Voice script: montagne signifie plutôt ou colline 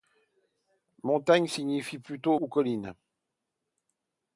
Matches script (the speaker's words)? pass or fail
pass